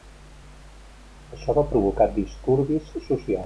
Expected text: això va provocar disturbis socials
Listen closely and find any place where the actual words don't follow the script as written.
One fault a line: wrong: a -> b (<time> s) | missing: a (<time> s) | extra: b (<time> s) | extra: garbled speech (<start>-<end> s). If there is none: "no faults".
no faults